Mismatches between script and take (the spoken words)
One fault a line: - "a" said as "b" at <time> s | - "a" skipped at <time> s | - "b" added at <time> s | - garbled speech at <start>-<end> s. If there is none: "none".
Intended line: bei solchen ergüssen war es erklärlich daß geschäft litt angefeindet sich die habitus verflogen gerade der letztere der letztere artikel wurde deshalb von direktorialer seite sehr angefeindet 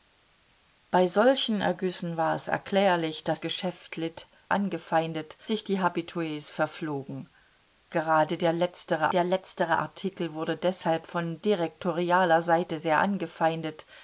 none